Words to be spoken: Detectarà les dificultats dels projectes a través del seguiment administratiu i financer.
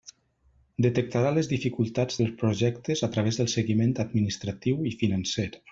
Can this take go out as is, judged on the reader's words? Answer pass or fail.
pass